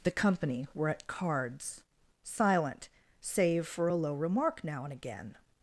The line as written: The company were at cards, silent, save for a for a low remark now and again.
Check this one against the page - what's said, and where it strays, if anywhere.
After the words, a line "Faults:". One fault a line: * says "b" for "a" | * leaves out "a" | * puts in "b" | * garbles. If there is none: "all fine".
The company were at cards, silent, save for a low remark now and again.
Faults:
* leaves out "for a"